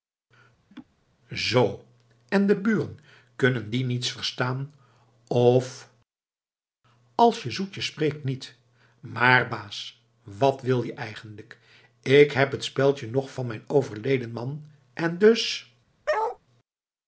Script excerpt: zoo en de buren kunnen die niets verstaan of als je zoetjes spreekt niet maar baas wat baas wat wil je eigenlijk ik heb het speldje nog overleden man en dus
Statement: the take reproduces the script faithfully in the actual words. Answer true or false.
false